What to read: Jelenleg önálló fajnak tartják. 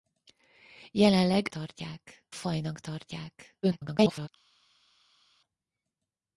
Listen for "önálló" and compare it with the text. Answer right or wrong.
wrong